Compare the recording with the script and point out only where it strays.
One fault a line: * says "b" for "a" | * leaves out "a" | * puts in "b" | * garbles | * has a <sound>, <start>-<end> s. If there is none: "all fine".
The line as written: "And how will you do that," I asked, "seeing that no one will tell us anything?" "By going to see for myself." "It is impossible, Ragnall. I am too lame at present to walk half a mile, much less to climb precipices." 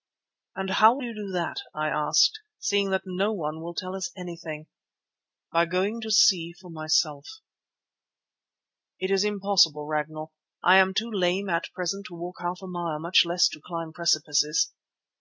all fine